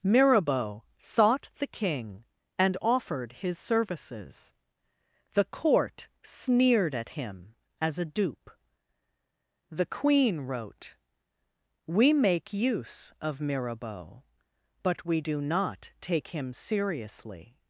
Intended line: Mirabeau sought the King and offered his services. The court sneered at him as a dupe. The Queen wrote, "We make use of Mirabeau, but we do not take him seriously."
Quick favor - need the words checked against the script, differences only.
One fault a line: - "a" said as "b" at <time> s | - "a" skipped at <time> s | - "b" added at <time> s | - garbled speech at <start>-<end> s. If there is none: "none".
none